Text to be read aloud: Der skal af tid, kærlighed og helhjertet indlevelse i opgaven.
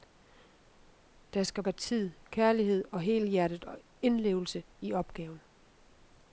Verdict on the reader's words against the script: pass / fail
pass